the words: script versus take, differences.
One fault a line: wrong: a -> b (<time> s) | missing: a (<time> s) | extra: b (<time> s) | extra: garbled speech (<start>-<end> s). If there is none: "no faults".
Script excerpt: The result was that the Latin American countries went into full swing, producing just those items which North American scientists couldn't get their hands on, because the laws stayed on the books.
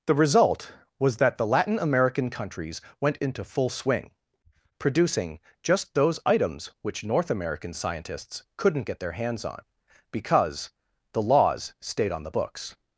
no faults